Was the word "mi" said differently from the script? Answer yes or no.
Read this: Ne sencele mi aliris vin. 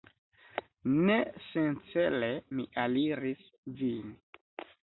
no